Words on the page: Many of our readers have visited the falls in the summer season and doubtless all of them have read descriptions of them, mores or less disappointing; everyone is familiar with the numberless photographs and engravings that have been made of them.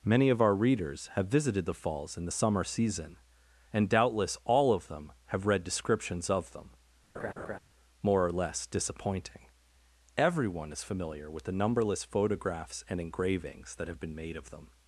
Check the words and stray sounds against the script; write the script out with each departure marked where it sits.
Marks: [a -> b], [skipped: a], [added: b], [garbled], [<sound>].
Many of our readers have visited the falls in the summer season and doubtless all of them have read descriptions of them, [laugh] [mores -> more] or less disappointing; everyone is familiar with the numberless photographs and engravings that have been made of them.